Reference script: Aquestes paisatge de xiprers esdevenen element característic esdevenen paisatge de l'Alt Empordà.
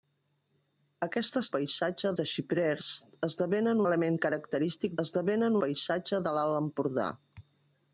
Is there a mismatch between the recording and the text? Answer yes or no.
no